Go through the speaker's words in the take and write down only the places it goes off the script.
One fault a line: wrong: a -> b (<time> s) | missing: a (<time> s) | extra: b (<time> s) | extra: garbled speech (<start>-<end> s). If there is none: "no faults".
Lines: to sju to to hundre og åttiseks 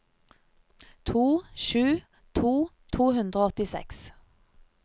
no faults